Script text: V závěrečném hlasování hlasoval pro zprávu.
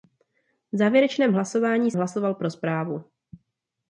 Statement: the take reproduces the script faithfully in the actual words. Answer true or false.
true